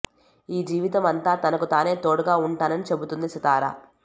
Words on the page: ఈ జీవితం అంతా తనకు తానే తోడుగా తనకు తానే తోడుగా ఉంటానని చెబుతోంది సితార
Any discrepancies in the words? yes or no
yes